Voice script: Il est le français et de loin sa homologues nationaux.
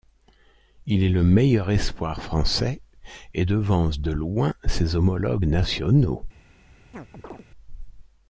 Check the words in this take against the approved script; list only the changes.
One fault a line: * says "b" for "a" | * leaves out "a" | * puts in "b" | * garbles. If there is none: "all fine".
* puts in "meilleur espoir"
* puts in "devance"
* says "ses" for "sa"